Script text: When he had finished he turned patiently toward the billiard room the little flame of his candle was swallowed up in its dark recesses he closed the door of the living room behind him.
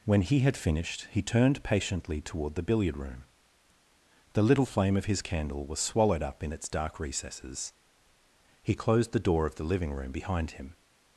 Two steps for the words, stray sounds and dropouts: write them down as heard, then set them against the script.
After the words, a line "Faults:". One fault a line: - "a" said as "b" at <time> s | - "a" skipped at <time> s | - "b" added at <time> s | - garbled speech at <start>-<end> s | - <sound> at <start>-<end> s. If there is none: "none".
When he had finished he turned patiently toward the billiard room the little flame of his candle was swallowed up in its dark recesses he closed the door of the living room behind him.
Faults:
none